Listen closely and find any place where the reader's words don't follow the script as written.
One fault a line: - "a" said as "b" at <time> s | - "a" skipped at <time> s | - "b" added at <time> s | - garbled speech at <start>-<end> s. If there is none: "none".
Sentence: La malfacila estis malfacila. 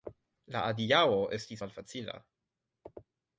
- "malfacila" said as "adiaŭo" at 0.7 s